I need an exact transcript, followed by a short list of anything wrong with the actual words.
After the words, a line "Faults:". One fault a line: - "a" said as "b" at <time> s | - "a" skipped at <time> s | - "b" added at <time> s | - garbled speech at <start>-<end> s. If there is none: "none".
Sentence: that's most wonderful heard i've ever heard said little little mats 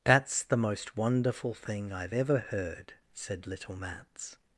that's the most wonderful thing i've ever heard said little mats
Faults:
- "the" added at 0.4 s
- "heard" said as "thing" at 1.5 s
- "little" skipped at 3.8 s